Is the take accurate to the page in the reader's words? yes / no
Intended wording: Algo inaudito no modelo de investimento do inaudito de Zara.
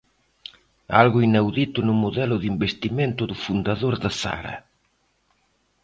no